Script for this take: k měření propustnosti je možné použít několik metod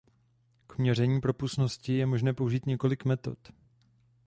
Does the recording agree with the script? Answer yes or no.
yes